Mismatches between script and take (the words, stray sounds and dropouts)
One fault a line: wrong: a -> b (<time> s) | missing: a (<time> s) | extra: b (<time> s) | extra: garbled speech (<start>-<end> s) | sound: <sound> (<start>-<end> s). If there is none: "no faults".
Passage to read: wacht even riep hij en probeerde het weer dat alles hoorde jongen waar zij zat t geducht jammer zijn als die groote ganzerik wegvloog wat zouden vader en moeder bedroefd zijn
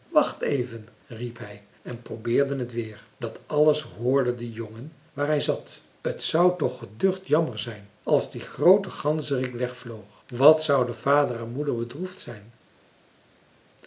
extra: de (4.3 s)
wrong: zij -> hij (5.3 s)
extra: zou toch (6.2 s)